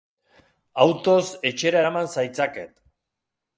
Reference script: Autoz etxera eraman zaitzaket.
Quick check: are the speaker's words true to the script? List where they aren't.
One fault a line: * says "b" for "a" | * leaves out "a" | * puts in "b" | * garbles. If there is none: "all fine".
all fine